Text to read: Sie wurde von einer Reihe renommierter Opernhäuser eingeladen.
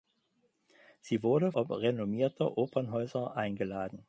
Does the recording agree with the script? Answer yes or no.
no